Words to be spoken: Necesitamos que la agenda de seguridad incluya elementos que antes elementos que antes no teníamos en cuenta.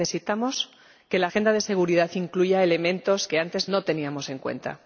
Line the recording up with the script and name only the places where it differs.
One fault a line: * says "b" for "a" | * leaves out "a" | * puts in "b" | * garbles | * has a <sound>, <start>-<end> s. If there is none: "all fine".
* leaves out "elementos que antes"